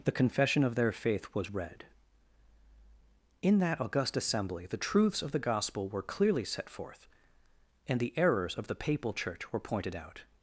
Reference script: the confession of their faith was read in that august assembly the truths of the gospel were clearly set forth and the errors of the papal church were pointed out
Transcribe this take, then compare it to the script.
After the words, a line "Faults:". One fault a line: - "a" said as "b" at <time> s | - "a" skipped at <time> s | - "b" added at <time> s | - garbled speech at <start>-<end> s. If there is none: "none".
the confession of their faith was read in that august assembly the truths of the gospel were clearly set forth and the errors of the papal church were pointed out
Faults:
none